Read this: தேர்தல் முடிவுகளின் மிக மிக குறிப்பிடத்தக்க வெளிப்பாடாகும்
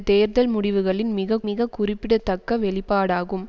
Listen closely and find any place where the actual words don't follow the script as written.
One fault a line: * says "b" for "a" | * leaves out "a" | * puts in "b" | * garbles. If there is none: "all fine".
all fine